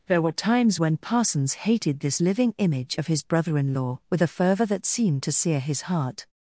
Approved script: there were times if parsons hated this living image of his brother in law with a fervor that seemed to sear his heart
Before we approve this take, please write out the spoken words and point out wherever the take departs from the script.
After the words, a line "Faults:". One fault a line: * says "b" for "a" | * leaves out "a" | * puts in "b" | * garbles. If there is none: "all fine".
there were times when parsons hated this living image of his brother in law with a fervor that seemed to sear his heart
Faults:
* says "when" for "if"